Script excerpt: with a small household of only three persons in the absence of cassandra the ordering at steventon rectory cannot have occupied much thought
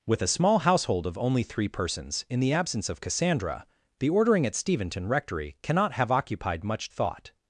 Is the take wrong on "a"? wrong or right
right